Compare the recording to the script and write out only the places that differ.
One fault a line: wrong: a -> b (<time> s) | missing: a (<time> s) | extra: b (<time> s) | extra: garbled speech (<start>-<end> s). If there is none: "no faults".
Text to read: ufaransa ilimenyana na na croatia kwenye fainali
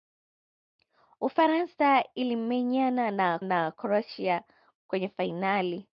no faults